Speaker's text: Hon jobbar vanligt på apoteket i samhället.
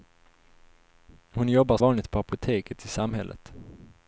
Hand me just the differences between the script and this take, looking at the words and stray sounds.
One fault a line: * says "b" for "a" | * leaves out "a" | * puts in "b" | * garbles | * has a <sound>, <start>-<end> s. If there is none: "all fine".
all fine